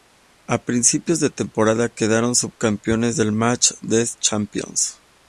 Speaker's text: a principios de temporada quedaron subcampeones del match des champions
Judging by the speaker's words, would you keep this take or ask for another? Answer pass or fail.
pass